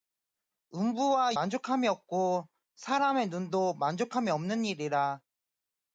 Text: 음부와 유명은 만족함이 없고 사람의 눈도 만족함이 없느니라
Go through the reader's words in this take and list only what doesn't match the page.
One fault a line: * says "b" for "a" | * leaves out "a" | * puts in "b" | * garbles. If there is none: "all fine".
* leaves out "유명은"